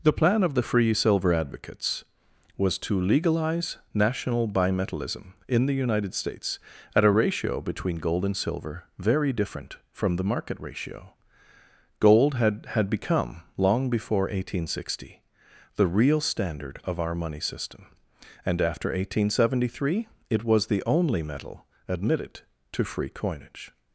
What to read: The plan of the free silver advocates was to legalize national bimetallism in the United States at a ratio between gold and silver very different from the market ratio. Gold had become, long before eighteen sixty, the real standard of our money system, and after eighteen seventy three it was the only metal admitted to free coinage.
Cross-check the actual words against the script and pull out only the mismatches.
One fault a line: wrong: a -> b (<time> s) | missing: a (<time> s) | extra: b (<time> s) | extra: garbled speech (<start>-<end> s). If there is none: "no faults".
extra: had (12.8 s)